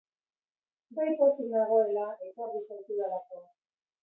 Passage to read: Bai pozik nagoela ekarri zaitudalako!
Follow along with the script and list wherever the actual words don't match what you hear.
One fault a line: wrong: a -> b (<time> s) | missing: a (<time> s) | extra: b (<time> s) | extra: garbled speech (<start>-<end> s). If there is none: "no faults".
no faults